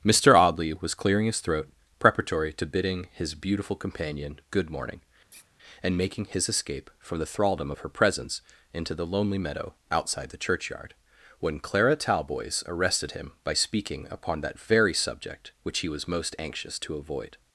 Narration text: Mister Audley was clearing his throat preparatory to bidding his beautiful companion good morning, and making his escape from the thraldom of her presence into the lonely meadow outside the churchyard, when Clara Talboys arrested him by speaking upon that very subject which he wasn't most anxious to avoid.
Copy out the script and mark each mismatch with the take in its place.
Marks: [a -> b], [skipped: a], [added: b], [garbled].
Mister Audley was clearing his throat preparatory to bidding his beautiful companion good morning, and making his escape from the thraldom of her presence into the lonely meadow outside the churchyard, when Clara Talboys arrested him by speaking upon that very subject which he [wasn't -> was] most anxious to avoid.